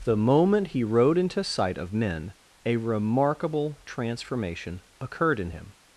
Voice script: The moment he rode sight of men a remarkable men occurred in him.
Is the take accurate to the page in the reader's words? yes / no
no